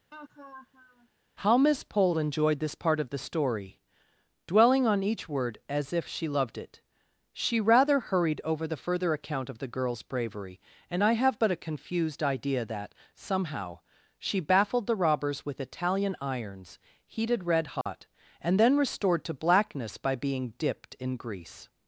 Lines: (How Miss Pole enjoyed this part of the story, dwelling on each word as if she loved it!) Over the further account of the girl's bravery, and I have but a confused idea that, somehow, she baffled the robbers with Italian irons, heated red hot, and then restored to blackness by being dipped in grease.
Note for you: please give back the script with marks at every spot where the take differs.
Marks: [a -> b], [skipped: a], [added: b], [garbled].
(How Miss Pole enjoyed this part of the story, dwelling on each word as if she loved it!) [added: She rather hurried] Over the further account of the girl's bravery, and I have but a confused idea that, somehow, she baffled the robbers with Italian irons, heated red hot, and then restored to blackness by being dipped in grease.